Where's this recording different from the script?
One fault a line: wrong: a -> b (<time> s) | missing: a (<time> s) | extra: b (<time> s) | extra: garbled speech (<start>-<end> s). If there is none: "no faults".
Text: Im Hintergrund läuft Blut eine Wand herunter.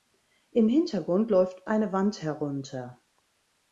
missing: Blut (1.7 s)